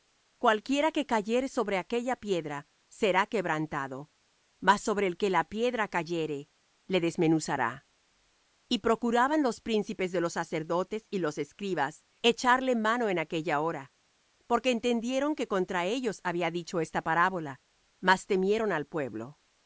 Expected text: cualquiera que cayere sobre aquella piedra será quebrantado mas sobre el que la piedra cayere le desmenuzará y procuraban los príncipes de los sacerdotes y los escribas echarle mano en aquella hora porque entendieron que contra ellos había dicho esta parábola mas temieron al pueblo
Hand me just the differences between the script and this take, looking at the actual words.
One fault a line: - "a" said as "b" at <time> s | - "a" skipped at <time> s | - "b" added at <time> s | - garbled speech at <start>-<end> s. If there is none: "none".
none